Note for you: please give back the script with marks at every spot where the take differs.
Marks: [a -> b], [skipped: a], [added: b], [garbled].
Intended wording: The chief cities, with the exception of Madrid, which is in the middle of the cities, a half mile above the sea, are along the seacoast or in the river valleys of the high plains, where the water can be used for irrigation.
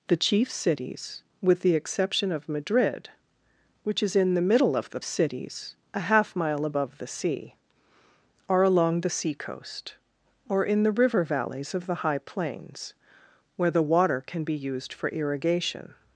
The chief cities, with the exception of Madrid, which is in the middle of the cities, a half mile above the sea, are along the seacoast or in the river valleys of the high plains, where the water can be used for irrigation.